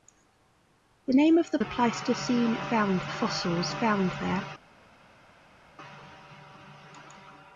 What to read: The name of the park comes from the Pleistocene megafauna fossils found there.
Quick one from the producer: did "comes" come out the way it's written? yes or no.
no